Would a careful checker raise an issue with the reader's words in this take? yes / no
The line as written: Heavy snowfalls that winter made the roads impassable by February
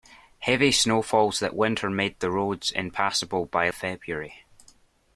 no